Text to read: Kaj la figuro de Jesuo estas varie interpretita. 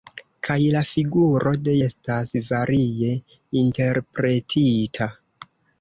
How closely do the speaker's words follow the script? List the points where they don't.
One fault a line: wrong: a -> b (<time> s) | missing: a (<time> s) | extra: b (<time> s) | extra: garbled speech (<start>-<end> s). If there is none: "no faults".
missing: Jesuo (1.8 s)